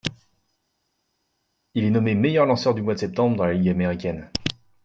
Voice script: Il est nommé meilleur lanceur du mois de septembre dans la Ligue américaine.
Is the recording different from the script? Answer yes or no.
no